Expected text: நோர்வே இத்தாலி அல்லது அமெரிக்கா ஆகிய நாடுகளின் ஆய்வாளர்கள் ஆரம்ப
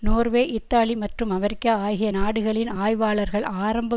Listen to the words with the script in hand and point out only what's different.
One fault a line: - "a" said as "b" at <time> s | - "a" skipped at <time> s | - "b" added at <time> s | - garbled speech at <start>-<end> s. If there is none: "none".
- "அல்லது" said as "மற்றும்" at 0.9 s